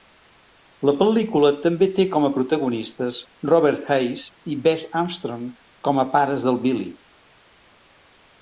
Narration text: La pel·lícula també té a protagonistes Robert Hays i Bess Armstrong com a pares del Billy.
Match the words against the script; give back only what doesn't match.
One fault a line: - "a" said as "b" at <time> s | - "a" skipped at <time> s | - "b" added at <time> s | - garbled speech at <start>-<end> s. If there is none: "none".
- "com" added at 2.1 s